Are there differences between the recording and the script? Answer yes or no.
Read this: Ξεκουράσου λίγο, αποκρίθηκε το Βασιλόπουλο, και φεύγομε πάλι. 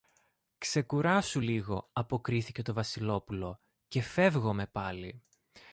no